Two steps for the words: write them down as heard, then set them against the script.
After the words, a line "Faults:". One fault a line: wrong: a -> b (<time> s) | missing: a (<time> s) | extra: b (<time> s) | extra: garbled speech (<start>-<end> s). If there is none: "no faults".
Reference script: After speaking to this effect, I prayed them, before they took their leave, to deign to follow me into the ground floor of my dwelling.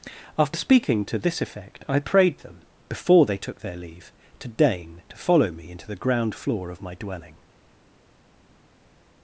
After speaking to this effect, I prayed them, before they took their leave, to deign to follow me into the ground floor of my dwelling.
Faults:
no faults